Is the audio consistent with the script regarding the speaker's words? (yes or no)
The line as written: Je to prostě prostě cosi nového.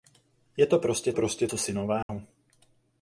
yes